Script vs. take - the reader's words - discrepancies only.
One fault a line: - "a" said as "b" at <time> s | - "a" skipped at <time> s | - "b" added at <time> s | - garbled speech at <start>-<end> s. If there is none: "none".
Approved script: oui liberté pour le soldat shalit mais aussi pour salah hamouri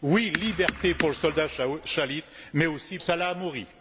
- "pour" skipped at 3.0 s